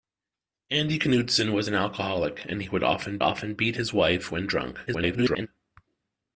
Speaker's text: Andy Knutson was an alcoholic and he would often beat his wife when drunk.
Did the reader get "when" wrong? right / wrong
right